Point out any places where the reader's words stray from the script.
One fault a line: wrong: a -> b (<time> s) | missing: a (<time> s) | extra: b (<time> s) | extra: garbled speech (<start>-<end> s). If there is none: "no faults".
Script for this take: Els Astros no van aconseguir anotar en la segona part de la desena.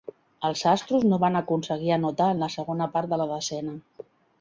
no faults